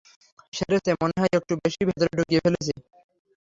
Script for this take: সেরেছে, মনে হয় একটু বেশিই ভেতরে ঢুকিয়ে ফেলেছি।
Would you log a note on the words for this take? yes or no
no